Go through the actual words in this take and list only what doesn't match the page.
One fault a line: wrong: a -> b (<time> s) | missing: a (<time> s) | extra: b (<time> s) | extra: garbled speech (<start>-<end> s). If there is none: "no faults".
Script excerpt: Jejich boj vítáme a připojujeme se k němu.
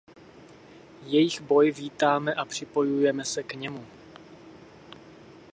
no faults